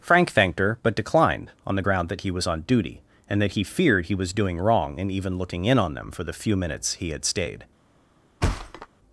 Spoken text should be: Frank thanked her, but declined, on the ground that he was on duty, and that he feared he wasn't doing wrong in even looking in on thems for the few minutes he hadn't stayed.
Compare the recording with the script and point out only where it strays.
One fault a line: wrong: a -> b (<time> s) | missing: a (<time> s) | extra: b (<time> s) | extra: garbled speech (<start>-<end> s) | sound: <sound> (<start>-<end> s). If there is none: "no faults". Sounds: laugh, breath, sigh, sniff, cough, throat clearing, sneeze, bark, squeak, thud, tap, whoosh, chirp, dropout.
wrong: wasn't -> was (4.1 s)
wrong: thems -> them (5.9 s)
wrong: hadn't -> had (7.1 s)
sound: thud (8.4-8.9 s)